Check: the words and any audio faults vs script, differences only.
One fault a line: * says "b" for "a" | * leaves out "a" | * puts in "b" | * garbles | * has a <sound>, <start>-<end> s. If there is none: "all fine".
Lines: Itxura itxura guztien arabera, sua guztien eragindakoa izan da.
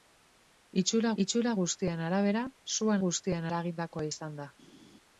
all fine